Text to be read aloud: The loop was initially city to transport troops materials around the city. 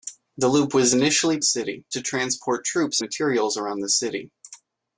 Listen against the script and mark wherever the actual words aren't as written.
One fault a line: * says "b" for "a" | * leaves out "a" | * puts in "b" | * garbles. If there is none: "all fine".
all fine